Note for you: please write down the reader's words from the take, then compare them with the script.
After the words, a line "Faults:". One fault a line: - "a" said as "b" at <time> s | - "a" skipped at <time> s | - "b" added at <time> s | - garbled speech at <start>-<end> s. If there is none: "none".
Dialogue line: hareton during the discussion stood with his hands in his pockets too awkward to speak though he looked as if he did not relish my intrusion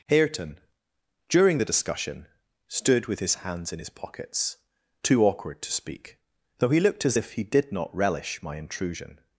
hareton during the discussion stood with his hands in his pockets too awkward to speak though he looked as if he did not relish my intrusion
Faults:
none